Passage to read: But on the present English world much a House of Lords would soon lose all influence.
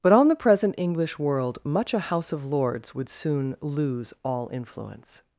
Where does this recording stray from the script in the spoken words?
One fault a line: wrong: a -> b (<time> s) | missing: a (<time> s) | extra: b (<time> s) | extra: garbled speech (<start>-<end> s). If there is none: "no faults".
no faults